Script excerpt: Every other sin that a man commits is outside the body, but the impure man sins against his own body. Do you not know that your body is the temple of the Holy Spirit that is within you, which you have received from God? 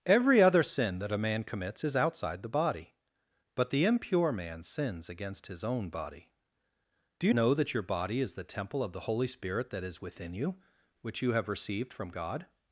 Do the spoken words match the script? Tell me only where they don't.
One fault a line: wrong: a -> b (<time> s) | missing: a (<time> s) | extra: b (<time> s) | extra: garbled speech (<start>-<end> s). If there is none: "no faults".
missing: not (7.3 s)